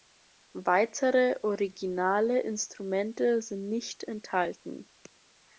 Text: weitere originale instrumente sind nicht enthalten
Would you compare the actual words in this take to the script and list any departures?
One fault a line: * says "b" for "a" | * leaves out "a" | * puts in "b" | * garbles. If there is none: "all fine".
all fine